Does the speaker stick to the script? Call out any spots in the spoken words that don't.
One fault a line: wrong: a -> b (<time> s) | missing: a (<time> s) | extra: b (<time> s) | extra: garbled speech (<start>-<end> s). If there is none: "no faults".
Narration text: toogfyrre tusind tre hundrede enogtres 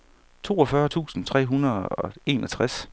extra: og (1.9 s)